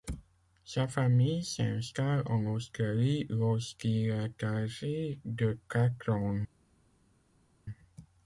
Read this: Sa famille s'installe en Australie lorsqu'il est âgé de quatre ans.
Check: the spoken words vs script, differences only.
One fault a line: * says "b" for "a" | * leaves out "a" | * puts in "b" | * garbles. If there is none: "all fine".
all fine